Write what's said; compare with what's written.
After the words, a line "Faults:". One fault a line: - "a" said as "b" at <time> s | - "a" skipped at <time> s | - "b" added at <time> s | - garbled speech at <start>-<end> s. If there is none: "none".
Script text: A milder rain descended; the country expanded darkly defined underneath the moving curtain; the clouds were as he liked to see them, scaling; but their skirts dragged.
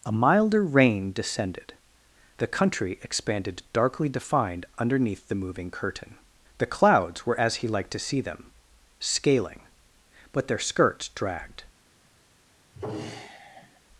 A milder rain descended; the country expanded darkly defined underneath the moving curtain; the clouds were as he liked to see them, scaling; but their skirts dragged.
Faults:
none